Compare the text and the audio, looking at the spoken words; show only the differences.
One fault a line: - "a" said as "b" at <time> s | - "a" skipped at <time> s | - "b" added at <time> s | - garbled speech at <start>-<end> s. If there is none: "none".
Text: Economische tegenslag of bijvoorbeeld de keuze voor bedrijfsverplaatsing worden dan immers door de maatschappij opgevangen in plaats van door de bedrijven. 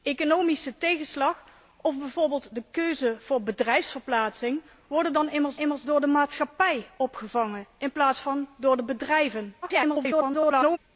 - "immers" added at 5.6 s
- garbled speech at 9.6-10.8 s